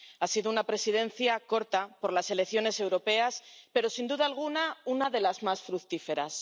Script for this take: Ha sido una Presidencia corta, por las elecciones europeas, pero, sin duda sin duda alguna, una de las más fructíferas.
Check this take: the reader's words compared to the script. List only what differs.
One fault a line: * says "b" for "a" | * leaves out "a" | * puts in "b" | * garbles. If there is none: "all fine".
* leaves out "sin duda"